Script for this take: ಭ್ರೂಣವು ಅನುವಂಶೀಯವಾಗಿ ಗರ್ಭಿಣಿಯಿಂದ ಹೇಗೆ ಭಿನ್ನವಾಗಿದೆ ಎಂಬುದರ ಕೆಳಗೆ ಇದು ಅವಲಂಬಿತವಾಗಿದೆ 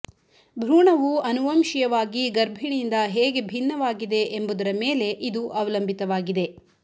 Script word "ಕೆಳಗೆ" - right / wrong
wrong